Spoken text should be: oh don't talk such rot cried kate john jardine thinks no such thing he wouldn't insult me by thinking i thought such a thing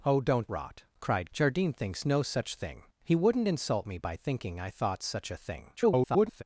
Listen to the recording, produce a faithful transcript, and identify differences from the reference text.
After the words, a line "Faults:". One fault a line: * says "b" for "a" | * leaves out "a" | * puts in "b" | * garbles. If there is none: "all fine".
oh don't rot cried jardine thinks no such thing he wouldn't insult me by thinking i thought such a thing [garbled]
Faults:
* leaves out "talk such"
* leaves out "kate john"
* garbles